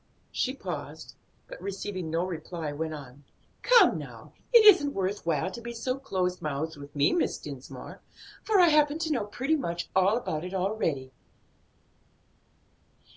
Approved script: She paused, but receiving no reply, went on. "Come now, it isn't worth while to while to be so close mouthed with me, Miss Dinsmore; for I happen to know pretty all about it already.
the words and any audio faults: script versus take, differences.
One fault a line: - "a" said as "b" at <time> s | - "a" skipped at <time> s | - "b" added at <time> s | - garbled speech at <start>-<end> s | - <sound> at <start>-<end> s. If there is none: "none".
- "while to" skipped at 5.6 s
- "much" added at 9.6 s